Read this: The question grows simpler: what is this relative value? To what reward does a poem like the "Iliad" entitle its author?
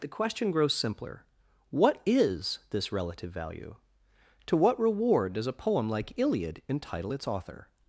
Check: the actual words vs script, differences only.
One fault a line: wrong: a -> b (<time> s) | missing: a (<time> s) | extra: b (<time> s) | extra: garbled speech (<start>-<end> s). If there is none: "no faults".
missing: the (6.2 s)